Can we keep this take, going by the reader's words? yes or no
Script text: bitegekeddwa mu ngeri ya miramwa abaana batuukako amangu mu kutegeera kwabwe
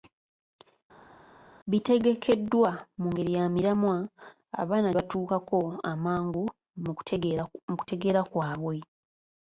yes